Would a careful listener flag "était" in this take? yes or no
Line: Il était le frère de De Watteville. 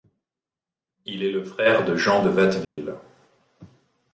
yes